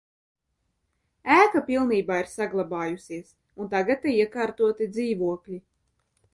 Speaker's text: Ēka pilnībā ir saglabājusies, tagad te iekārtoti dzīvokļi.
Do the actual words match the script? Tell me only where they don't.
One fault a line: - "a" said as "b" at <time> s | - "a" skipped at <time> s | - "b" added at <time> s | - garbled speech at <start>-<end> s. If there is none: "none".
- "un" added at 3.6 s